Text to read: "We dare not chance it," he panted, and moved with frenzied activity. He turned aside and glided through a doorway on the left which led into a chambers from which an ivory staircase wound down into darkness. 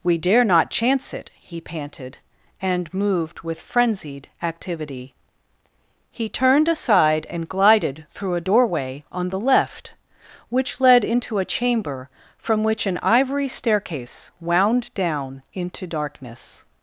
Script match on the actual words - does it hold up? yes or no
no